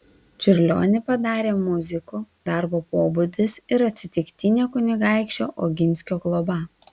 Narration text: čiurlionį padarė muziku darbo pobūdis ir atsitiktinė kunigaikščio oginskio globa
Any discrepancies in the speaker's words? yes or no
no